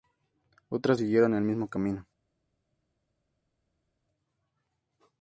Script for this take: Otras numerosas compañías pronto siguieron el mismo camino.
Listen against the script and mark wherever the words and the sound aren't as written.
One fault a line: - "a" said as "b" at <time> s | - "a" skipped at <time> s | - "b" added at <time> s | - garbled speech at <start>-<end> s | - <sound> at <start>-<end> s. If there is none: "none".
- "numerosas compañías pronto" skipped at 1.0 s